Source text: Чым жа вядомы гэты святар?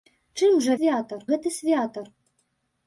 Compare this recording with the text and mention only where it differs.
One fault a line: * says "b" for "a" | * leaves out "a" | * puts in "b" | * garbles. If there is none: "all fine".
* says "святар" for "вядомы"